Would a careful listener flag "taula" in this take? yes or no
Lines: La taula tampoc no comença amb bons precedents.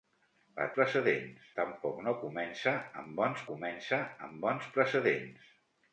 yes